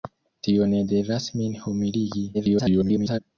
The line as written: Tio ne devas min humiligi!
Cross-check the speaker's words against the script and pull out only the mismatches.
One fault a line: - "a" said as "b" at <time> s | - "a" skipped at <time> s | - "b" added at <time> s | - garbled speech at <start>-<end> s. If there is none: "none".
- garbled speech at 2.3-3.2 s